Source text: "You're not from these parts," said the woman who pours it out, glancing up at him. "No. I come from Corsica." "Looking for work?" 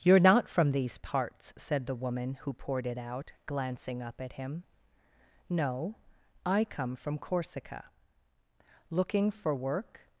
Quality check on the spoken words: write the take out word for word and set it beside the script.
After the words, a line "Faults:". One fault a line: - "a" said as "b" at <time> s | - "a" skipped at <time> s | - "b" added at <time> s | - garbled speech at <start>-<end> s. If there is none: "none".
"You're not from these parts," said the woman who poured it out, glancing up at him. "No. I come from Corsica." "Looking for work?"
Faults:
- "pours" said as "poured" at 2.5 s